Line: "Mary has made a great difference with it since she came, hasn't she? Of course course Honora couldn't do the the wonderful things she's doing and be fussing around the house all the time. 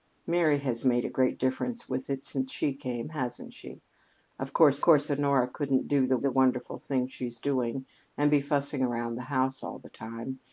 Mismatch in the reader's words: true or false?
false